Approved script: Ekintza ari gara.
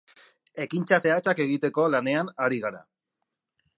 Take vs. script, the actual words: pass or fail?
fail